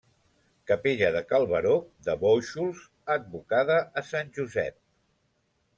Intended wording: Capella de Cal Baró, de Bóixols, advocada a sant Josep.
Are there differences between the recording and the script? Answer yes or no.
no